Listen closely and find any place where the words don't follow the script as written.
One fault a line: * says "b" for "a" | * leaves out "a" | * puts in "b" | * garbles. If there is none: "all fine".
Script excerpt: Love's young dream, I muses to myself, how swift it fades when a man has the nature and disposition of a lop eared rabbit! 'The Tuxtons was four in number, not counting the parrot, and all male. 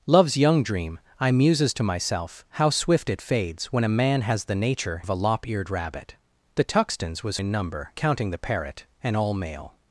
* leaves out "and disposition"
* leaves out "four"
* leaves out "not"